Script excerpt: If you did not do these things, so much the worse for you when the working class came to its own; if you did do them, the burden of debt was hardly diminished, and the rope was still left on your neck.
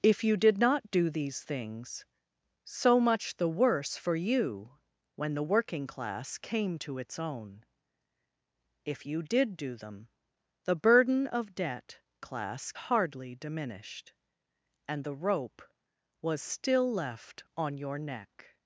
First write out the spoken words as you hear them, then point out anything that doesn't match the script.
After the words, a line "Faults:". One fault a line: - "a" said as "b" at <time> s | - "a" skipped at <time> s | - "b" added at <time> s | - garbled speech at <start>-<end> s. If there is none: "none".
If you did not do these things, so much the worse for you when the working class came to its own; if you did do them, the burden of debt class hardly diminished, and the rope was still left on your neck.
Faults:
- "was" said as "class" at 12.2 s